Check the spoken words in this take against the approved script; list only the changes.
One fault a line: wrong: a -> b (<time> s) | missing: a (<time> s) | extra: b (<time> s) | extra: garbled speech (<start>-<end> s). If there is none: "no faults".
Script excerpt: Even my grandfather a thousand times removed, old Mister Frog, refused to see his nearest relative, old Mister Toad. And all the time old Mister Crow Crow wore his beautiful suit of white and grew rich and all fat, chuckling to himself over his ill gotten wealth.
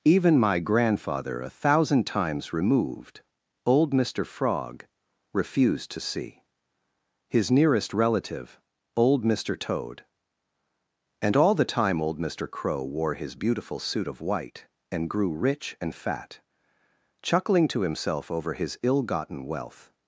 missing: Crow (12.8 s)
missing: all (15.9 s)